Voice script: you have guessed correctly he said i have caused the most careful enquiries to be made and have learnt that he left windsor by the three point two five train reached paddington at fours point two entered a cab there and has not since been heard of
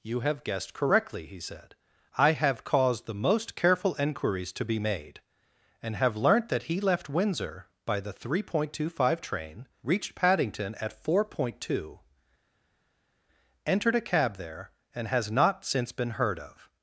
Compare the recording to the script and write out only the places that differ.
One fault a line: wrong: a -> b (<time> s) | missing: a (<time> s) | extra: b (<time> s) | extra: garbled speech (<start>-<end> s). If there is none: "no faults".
wrong: fours -> four (11.0 s)